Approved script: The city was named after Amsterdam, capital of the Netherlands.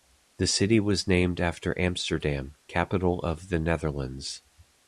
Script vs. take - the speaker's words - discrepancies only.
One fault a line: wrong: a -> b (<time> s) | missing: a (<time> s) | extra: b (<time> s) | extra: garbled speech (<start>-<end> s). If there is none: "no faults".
no faults